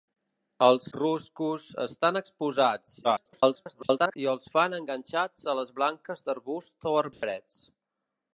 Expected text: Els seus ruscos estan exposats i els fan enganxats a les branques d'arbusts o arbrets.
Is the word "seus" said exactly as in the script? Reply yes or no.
no